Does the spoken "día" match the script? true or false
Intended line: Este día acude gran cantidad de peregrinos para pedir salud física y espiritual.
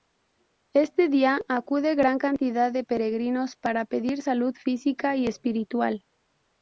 true